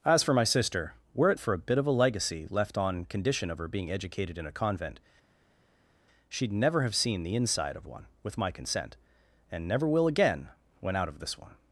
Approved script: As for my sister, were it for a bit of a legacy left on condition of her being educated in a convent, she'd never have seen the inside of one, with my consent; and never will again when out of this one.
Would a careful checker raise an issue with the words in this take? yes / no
no